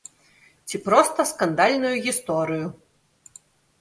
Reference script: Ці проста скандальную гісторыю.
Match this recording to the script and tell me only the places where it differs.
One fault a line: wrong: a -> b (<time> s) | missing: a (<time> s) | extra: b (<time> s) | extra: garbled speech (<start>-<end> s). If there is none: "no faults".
no faults